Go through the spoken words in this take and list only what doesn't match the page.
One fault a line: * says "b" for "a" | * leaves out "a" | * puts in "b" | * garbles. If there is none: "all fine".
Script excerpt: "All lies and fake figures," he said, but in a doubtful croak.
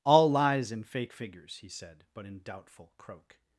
* leaves out "a"